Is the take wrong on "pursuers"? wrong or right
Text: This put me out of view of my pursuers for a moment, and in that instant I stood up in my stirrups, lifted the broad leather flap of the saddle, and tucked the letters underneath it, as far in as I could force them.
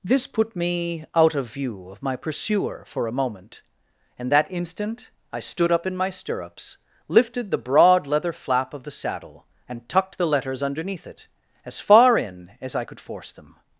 wrong